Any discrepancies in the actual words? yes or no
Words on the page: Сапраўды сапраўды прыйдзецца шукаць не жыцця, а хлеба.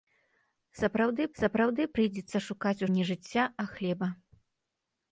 no